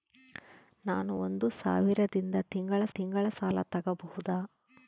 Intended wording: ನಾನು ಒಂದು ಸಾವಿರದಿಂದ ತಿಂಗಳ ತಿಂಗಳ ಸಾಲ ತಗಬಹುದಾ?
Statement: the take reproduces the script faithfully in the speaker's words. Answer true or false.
true